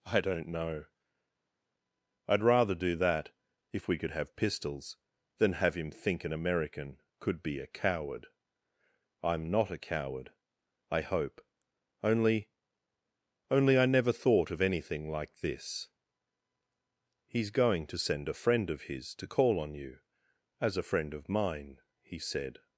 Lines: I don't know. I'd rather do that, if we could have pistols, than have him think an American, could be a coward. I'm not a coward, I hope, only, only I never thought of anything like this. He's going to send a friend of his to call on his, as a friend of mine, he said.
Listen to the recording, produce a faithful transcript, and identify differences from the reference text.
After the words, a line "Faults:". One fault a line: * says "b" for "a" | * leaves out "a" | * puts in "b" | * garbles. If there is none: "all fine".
I don't know. I'd rather do that, if we could have pistols, than have him think an American, could be a coward. I'm not a coward, I hope, only, only I never thought of anything like this. He's going to send a friend of his to call on you, as a friend of mine, he said.
Faults:
* says "you" for "his"